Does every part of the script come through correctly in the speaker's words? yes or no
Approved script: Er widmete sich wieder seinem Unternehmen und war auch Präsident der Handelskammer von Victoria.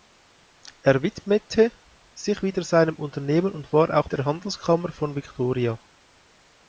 no